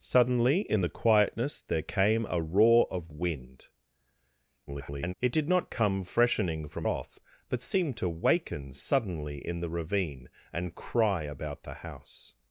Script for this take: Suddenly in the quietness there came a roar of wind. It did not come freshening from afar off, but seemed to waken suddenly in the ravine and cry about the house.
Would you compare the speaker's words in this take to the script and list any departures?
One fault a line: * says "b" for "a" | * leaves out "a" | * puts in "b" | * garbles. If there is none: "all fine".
* garbles
* leaves out "afar"